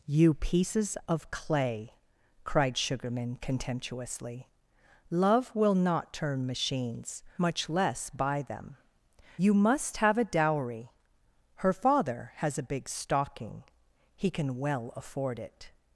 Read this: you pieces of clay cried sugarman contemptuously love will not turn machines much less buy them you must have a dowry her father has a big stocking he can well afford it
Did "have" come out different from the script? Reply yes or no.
no